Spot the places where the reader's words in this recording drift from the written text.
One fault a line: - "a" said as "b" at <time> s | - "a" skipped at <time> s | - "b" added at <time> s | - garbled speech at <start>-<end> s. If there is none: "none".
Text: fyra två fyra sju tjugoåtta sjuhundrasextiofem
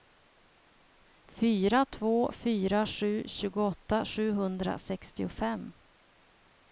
none